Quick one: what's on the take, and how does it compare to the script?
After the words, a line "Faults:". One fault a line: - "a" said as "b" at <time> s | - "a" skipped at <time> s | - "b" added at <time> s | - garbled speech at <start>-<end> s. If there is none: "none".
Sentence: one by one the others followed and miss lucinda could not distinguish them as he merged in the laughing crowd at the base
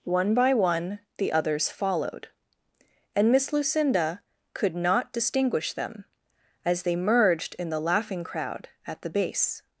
one by one the others followed and miss lucinda could not distinguish them as they merged in the laughing crowd at the base
Faults:
- "he" said as "they" at 6.8 s